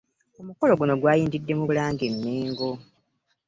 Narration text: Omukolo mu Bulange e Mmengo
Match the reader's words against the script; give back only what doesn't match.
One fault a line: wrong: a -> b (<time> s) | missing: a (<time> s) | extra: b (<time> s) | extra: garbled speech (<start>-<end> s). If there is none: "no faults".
extra: guno gwayindidde (0.8 s)